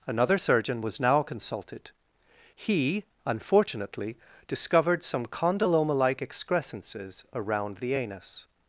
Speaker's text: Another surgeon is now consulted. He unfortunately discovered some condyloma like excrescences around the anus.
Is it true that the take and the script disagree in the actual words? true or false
true